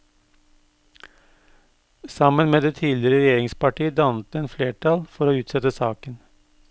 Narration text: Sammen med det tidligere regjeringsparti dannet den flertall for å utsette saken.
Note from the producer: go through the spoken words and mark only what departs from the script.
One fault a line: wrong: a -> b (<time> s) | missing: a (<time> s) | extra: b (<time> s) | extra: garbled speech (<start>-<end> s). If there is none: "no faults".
no faults